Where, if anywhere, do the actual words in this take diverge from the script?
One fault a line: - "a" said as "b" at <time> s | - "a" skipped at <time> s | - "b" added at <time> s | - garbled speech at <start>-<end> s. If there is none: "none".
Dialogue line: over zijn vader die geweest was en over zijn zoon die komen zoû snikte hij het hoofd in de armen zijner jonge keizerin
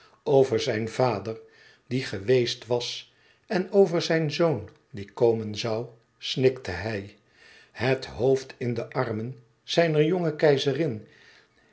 none